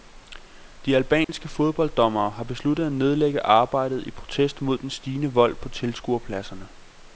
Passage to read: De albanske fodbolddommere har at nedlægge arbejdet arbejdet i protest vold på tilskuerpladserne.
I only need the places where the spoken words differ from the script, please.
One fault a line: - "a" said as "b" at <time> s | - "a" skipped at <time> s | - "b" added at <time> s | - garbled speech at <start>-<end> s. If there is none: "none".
- "besluttet" added at 2.4 s
- "arbejdet" skipped at 4.1 s
- "mod den stigende" added at 4.6 s